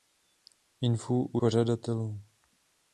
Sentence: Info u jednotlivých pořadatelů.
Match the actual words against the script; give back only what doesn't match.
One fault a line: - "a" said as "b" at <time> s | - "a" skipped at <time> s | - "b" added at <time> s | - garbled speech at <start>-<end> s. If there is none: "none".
- "jednotlivých" skipped at 1.4 s